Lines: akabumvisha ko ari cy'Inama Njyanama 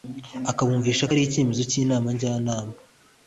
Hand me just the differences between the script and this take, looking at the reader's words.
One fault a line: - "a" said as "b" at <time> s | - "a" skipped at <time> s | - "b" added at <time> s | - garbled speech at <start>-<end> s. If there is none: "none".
- "icyemezo" added at 1.2 s